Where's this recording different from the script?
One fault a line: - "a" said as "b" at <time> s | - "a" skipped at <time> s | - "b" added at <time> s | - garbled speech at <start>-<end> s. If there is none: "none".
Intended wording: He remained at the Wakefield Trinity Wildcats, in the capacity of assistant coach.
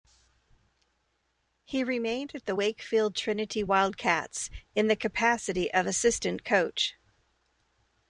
none